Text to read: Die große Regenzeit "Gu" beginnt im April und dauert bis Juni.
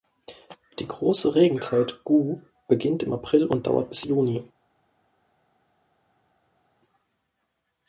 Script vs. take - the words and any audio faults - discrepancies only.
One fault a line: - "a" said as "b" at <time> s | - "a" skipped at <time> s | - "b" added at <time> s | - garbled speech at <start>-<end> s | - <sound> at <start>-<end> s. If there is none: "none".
none